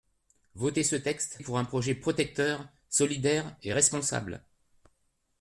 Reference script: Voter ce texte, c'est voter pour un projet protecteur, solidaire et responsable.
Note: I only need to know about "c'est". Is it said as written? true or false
false